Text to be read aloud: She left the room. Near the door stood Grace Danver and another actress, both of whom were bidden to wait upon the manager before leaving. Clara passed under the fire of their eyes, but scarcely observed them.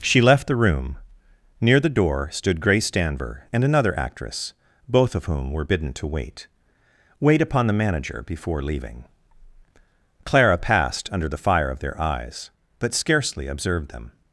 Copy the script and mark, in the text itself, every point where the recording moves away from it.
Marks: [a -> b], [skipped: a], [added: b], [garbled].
She left the room. Near the door stood Grace Danver and another actress, both of whom were bidden to wait [added: wait] upon the manager before leaving. Clara passed under the fire of their eyes, but scarcely observed them.